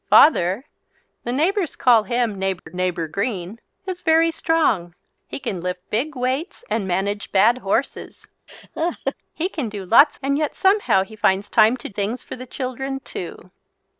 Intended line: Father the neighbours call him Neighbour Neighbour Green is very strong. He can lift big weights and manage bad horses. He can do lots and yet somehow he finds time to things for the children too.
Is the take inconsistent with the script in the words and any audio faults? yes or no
yes